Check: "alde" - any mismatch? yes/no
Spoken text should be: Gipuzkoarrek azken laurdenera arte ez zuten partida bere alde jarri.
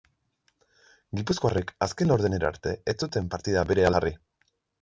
yes